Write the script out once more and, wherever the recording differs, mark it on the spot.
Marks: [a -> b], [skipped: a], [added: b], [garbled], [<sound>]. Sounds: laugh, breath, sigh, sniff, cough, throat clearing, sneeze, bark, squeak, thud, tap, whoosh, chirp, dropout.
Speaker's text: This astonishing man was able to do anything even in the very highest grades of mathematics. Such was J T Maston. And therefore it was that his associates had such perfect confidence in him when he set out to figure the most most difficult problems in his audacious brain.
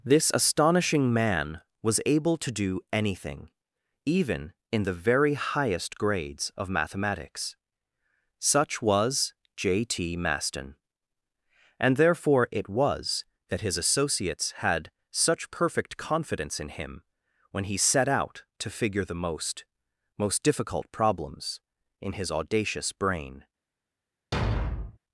This astonishing man was able to do anything even in the very highest grades of mathematics. Such was J T Maston. And therefore it was that his associates had such perfect confidence in him when he set out to figure the most most difficult problems in his audacious brain. [thud]